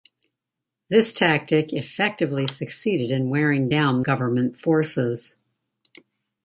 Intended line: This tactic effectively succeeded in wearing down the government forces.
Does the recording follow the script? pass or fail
fail